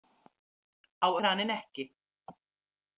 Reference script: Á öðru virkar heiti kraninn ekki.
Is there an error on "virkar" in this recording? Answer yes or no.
yes